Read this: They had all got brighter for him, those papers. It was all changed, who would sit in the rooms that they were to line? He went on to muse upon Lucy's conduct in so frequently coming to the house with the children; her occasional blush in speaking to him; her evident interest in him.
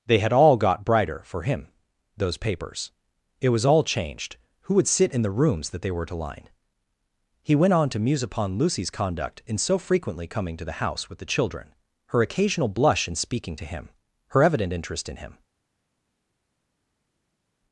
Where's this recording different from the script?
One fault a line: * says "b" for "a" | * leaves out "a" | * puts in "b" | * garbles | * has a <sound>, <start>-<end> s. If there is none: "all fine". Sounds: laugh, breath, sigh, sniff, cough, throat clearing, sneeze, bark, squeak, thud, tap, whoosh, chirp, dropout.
all fine